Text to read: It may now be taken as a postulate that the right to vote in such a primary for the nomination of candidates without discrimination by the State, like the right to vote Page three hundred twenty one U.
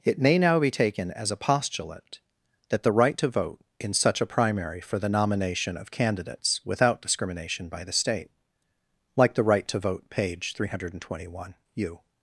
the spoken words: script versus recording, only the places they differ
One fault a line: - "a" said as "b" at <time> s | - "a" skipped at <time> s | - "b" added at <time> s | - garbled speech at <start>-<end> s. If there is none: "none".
none